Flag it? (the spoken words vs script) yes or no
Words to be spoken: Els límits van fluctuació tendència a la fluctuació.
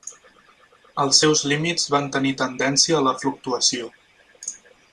yes